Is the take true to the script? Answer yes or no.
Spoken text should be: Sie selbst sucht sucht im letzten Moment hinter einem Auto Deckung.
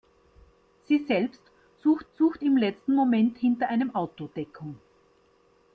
yes